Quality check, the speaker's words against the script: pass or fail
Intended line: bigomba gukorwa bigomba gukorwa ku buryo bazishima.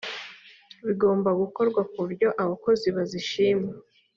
fail